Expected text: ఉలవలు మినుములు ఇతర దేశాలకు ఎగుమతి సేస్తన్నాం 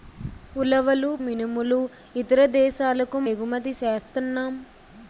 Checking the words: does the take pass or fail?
pass